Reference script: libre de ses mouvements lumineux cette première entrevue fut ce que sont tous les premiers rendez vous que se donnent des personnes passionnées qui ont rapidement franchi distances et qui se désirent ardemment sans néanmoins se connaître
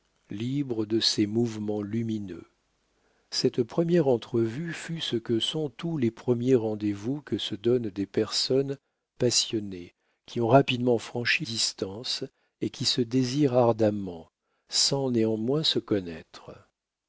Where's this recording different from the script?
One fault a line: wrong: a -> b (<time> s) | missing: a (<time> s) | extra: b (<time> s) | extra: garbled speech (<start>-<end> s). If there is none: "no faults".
no faults